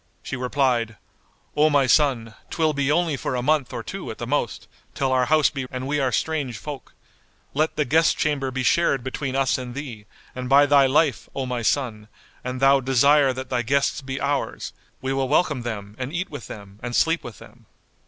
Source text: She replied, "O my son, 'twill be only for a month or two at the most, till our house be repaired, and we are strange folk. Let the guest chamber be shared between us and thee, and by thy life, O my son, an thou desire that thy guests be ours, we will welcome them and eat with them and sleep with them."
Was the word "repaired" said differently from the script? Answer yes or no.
yes